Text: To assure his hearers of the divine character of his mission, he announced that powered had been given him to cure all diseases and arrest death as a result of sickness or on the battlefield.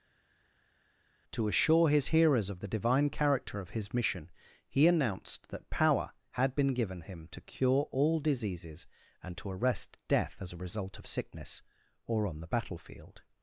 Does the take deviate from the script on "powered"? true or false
true